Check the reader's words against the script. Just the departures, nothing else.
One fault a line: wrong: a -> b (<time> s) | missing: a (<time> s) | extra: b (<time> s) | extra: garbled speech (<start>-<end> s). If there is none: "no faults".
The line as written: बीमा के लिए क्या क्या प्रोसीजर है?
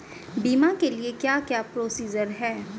no faults